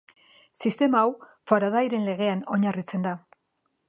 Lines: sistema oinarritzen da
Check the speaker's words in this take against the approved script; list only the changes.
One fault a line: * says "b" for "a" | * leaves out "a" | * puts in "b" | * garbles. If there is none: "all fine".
* puts in "hau faradayren legean"